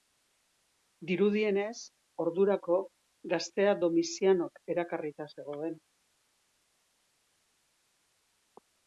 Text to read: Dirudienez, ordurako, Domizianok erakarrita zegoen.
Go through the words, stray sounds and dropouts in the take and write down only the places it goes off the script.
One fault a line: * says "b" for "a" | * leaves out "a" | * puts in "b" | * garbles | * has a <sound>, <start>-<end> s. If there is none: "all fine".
* puts in "gaztea"